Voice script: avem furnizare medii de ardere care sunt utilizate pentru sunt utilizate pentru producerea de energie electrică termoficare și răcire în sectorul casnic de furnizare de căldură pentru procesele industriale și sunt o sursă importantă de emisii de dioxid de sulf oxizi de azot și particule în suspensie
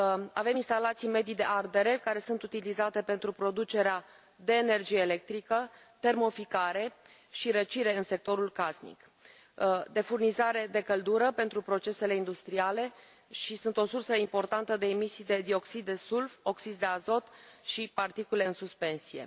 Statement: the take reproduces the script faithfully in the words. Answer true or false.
false